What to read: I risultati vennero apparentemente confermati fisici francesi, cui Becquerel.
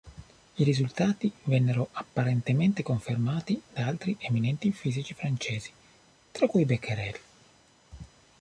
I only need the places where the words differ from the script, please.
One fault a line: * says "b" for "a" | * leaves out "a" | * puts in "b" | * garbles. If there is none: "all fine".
* puts in "da altri eminenti"
* puts in "tra"